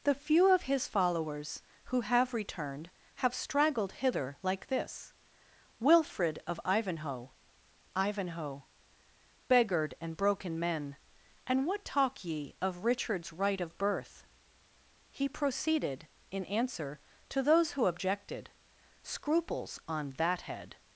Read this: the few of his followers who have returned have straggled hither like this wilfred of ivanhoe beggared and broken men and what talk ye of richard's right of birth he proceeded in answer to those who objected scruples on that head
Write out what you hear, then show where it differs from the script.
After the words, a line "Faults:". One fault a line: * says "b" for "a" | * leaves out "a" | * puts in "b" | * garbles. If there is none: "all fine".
the few of his followers who have returned have straggled hither like this wilfred of ivanhoe ivanhoe beggared and broken men and what talk ye of richard's right of birth he proceeded in answer to those who objected scruples on that head
Faults:
* puts in "ivanhoe"